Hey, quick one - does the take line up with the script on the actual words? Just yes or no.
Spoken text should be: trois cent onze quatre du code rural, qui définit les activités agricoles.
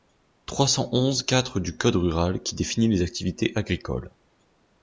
yes